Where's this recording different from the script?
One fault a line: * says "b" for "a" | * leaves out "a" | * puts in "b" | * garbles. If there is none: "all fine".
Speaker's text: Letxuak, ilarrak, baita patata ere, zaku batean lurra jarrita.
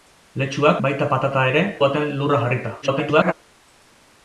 * leaves out "ilarrak"
* leaves out "zaku"
* garbles